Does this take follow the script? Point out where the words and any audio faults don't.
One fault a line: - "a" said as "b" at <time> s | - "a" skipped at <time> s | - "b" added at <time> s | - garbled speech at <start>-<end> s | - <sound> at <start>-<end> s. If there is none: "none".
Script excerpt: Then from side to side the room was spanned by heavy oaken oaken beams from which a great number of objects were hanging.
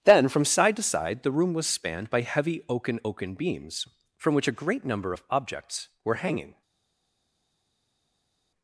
none